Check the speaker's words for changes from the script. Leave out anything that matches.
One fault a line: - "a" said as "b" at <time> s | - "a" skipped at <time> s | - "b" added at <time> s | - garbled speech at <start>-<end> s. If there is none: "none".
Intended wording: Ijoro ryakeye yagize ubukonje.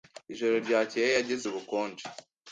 none